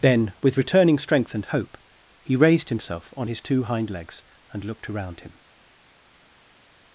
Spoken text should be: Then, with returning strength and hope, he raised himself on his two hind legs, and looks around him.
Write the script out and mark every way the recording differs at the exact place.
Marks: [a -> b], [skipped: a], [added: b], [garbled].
Then, with returning strength and hope, he raised himself on his two hind legs, and [looks -> looked] around him.